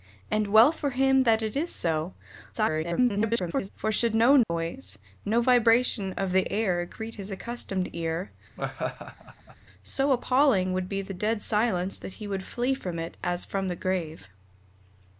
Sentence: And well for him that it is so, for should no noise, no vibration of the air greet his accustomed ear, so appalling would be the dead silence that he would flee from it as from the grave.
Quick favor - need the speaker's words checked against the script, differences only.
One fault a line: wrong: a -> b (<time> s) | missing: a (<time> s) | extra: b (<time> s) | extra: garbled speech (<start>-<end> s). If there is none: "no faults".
extra: garbled speech (2.5-3.7 s)